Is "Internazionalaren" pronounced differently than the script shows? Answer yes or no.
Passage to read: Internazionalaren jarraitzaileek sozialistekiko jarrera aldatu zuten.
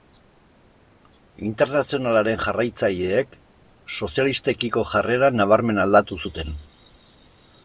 no